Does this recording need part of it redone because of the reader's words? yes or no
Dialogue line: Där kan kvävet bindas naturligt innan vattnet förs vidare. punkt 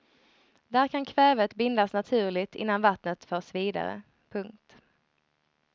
no